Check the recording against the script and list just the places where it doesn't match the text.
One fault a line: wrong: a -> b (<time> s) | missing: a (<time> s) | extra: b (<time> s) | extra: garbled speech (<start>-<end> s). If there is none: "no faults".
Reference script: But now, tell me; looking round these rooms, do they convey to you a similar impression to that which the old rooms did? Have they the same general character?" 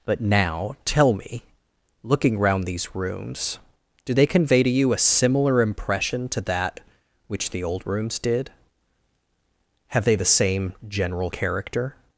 no faults